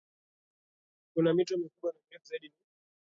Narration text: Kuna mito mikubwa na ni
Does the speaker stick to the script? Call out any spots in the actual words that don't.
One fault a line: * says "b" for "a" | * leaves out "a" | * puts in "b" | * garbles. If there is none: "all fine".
* puts in "mirefu zaidi"